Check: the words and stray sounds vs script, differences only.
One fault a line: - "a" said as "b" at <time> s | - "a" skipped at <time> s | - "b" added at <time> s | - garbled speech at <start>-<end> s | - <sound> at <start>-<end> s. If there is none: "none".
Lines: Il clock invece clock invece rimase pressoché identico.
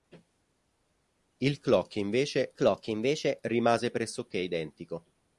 none